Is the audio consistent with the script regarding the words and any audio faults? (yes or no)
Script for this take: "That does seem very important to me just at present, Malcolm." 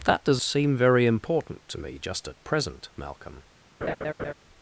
no